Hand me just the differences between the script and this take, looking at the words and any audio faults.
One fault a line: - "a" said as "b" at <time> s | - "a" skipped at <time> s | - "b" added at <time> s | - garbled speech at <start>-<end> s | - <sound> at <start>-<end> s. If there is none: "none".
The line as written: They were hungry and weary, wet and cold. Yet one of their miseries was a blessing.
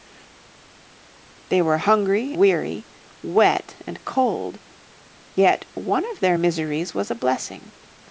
- "and" skipped at 2.3 s